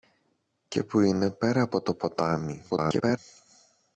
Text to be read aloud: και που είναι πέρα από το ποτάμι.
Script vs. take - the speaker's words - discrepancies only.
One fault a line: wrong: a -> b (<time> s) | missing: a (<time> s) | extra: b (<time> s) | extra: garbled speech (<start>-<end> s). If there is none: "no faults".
extra: garbled speech (2.7-3.2 s)